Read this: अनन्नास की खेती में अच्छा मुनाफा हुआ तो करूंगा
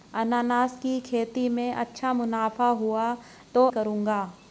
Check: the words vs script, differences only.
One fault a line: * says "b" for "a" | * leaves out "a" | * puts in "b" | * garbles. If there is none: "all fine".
all fine